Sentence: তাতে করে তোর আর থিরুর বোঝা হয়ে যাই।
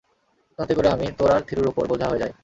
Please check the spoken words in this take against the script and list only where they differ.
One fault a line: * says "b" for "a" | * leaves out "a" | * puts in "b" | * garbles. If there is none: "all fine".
* puts in "আমি"
* puts in "ওপর"